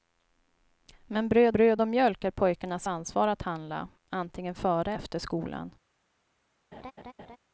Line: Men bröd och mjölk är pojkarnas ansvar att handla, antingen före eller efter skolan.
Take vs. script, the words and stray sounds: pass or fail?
fail